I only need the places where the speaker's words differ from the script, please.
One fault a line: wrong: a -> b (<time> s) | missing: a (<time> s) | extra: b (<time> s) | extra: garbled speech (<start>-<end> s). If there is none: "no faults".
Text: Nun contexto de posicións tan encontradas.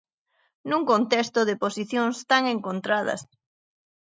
no faults